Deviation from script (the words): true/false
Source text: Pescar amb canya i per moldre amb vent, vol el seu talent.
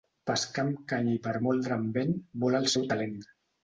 false